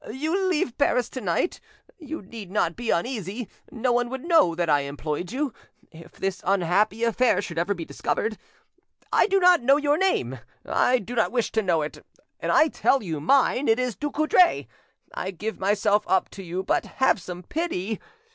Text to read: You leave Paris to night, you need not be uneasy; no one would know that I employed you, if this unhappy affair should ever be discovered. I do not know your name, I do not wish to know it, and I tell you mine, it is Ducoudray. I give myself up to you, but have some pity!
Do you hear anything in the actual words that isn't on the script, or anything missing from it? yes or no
no